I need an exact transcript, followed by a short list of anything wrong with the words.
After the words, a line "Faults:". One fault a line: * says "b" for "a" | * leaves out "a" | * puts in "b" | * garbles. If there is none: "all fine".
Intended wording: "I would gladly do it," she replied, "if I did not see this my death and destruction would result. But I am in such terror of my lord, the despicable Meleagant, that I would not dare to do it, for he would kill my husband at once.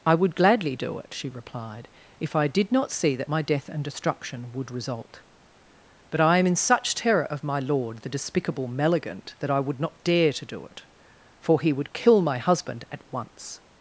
"I would gladly do it," she replied, "if I did not see that my death and destruction would result. But I am in such terror of my lord, the despicable Meleagant, that I would not dare to do it, for he would kill my husband at once.
Faults:
* says "that" for "this"